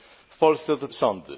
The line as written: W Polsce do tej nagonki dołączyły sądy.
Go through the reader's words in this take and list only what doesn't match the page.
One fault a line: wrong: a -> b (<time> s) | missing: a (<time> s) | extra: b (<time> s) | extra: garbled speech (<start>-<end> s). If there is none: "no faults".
missing: tej nagonki dołączyły (0.9 s)